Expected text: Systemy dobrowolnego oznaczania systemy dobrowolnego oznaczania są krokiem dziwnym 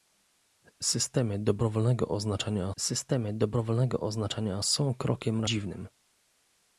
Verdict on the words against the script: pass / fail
pass